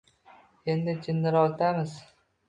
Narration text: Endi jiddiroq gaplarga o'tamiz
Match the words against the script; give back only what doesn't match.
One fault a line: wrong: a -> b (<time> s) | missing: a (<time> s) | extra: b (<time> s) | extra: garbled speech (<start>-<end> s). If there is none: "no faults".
missing: gaplarga (1.5 s)